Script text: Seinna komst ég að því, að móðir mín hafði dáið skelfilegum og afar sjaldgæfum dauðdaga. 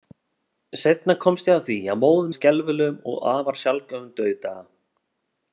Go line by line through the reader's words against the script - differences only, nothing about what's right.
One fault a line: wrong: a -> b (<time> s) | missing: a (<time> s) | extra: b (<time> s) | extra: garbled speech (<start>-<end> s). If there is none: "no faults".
missing: mín hafði dáið (2.3 s)